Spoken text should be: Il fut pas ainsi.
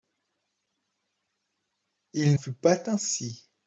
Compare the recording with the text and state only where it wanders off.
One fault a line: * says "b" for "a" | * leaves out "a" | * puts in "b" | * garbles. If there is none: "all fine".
all fine